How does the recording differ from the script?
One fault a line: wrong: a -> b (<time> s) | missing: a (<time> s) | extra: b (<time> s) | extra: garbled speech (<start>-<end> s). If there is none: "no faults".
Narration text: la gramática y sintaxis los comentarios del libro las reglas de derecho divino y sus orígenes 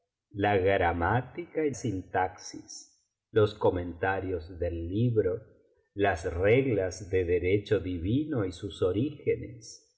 no faults